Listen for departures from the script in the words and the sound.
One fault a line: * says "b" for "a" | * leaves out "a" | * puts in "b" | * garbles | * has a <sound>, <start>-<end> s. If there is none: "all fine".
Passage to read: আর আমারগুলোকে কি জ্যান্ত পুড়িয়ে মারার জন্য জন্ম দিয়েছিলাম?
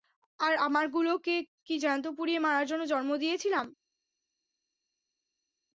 all fine